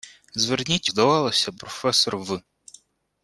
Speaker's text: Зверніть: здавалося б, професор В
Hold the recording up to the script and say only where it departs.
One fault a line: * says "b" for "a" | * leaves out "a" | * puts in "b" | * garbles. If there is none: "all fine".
all fine